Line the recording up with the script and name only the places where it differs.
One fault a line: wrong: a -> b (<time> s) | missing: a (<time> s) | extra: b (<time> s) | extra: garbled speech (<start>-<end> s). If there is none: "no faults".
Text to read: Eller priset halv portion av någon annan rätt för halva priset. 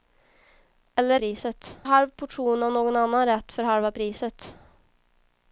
no faults